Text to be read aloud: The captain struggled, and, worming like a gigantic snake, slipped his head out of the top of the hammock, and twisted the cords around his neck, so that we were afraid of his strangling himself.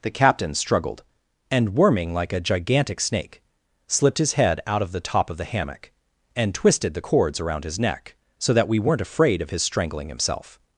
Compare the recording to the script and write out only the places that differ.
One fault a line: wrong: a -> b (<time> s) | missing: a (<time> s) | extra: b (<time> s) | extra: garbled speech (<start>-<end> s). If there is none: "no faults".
wrong: were -> weren't (8.8 s)